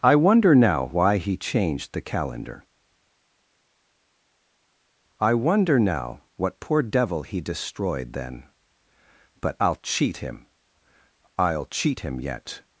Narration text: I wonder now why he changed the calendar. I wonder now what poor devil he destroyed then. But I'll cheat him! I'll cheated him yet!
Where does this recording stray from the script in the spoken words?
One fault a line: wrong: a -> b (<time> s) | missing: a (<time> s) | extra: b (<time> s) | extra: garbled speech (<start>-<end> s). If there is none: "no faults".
wrong: cheated -> cheat (11.7 s)